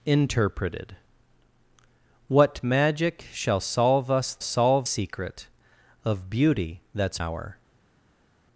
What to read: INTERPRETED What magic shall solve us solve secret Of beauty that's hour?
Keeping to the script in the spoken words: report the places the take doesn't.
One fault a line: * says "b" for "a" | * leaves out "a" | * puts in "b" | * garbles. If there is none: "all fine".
all fine